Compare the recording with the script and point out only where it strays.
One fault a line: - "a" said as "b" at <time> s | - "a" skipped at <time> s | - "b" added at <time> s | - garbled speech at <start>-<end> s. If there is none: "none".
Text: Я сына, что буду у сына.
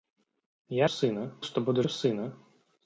none